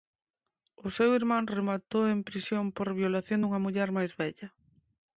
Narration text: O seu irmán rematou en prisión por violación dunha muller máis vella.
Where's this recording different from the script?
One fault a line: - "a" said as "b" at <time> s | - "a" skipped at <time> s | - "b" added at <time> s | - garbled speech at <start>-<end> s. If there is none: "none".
none